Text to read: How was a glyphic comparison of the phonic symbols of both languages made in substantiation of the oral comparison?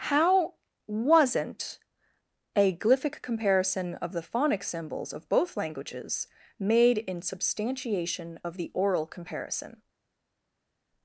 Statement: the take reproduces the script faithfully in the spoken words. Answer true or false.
false